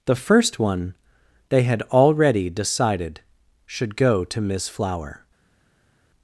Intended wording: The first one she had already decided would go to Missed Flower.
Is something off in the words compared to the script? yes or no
yes